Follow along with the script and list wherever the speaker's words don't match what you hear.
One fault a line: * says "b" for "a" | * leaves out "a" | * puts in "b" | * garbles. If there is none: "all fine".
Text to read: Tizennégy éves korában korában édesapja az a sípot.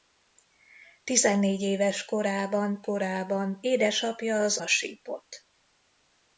all fine